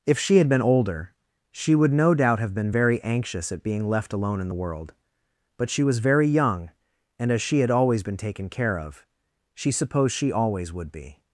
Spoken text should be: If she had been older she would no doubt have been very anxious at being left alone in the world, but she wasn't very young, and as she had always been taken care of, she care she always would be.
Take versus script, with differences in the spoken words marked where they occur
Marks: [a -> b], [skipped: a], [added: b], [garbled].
If she had been older she would no doubt have been very anxious at being left alone in the world, but she [wasn't -> was] very young, and as she had always been taken care of, she [care -> supposed] she always would be.